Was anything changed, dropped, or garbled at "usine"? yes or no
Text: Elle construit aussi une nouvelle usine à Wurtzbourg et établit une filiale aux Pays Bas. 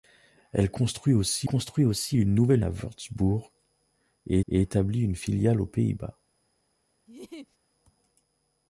yes